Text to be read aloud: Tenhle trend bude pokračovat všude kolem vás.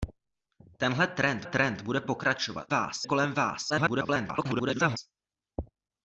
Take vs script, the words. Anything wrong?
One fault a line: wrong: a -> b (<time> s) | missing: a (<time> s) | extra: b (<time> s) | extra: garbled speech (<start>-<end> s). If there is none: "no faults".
extra: trend (1.4 s)
wrong: všude -> vás (2.7 s)
extra: garbled speech (3.7-5.0 s)